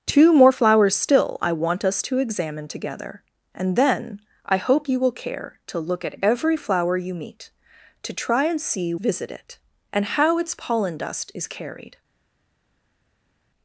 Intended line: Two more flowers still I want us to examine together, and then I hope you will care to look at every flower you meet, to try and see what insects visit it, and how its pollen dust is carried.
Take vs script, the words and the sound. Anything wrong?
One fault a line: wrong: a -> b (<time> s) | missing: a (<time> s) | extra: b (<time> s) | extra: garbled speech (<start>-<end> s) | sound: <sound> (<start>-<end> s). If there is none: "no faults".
missing: what insects (8.9 s)